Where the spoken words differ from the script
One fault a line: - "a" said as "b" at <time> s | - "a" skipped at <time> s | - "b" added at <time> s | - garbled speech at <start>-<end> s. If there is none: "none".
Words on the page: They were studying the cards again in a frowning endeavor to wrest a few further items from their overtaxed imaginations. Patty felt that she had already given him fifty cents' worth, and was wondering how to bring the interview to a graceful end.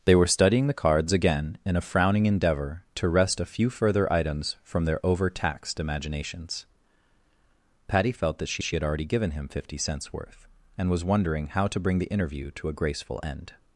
- "she" added at 8.6 s